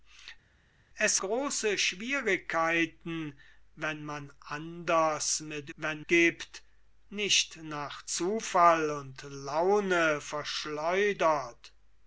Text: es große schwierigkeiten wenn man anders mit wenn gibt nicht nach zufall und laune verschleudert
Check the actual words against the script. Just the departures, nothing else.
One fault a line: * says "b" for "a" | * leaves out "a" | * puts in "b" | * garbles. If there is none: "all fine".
all fine